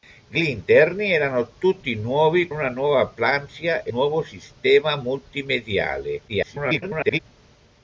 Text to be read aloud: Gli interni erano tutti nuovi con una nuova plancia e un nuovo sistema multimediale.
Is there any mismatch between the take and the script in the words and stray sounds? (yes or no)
yes